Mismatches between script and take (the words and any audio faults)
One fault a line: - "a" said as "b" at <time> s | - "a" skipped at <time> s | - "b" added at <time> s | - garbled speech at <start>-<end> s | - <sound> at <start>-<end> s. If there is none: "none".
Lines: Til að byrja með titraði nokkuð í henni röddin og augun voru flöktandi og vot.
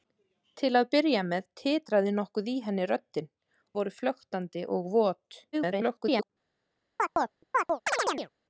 - "og augun" skipped at 3.3 s
- garbled speech at 5.5-6.3 s
- chirp at 7.0-8.3 s